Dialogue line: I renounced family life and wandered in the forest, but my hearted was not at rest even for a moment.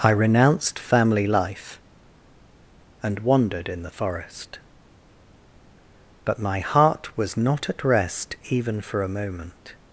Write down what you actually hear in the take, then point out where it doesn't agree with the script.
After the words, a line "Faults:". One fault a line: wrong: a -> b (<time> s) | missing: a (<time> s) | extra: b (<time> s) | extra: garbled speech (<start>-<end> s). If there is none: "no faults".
I renounced family life and wandered in the forest, but my heart was not at rest even for a moment.
Faults:
wrong: hearted -> heart (6.6 s)